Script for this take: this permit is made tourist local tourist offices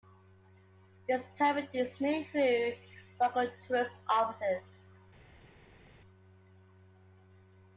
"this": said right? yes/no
yes